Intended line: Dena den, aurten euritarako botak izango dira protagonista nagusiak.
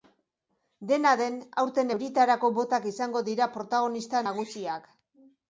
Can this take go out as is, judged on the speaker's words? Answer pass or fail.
pass